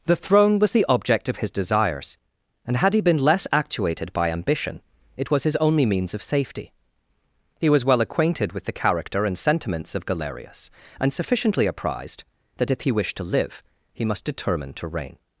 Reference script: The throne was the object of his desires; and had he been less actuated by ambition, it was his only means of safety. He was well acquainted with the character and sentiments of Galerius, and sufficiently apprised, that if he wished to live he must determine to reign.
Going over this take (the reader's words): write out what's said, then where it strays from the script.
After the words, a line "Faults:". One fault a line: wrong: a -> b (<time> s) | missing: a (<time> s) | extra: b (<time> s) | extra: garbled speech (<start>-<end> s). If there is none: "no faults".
The throne was the object of his desires; and had he been less actuated by ambition, it was his only means of safety. He was well acquainted with the character and sentiments of Galerius, and sufficiently apprised, that if he wished to live he must determine to reign.
Faults:
no faults